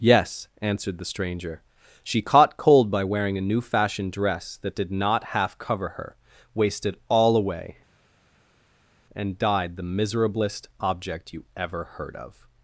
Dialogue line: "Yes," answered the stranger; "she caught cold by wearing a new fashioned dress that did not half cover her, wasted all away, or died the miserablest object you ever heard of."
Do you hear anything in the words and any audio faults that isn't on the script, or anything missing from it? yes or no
yes